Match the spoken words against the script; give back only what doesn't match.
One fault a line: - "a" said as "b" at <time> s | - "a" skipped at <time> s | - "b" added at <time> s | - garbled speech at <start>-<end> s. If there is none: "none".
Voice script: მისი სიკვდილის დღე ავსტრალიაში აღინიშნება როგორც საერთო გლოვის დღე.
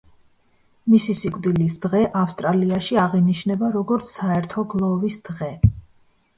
none